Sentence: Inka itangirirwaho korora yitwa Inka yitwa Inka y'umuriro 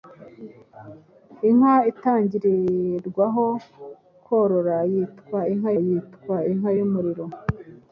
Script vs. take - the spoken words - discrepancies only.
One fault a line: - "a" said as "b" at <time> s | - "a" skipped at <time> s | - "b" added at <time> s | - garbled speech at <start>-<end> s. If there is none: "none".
none